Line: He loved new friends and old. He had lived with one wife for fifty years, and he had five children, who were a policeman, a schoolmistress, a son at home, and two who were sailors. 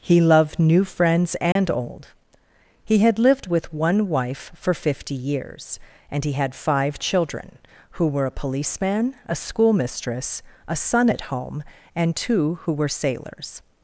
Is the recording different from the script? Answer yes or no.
no